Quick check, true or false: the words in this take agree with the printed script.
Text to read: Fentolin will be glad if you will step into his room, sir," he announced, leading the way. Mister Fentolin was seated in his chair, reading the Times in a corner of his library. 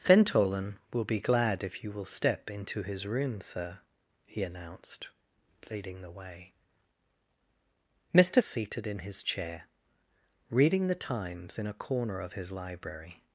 false